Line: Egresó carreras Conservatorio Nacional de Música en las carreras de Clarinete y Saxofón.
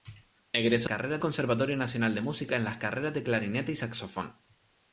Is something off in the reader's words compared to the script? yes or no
no